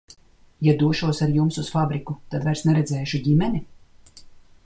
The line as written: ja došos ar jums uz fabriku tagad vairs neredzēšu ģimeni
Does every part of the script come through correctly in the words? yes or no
no